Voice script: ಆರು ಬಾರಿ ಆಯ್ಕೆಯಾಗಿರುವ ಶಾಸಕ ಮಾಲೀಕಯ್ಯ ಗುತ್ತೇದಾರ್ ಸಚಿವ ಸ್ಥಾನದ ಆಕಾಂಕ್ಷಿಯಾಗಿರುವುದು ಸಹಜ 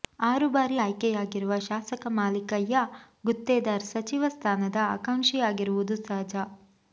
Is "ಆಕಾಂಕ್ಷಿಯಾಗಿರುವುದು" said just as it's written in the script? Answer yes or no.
yes